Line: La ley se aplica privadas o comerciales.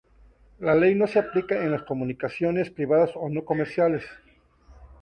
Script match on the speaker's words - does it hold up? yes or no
no